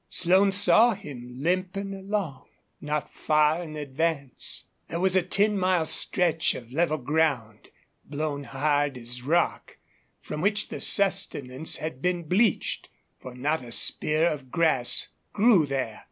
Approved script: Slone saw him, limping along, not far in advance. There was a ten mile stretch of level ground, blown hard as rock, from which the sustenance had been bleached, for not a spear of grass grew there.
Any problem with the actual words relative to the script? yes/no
no